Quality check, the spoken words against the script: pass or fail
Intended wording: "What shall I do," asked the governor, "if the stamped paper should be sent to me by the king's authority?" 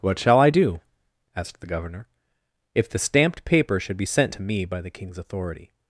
pass